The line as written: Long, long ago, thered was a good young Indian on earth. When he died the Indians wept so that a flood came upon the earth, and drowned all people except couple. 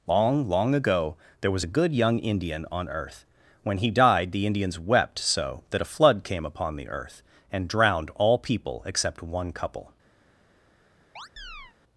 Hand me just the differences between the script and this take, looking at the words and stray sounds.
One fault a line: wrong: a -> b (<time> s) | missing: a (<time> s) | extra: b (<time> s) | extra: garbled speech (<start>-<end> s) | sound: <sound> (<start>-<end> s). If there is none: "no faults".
wrong: thered -> there (1.4 s)
extra: one (9.2 s)
sound: chirp (11.2-11.8 s)